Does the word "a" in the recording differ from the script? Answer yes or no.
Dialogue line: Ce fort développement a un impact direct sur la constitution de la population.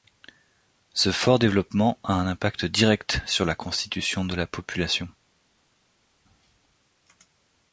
no